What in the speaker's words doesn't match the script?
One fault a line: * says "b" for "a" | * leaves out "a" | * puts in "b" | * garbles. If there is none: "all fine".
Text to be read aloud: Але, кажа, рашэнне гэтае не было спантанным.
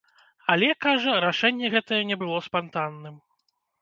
all fine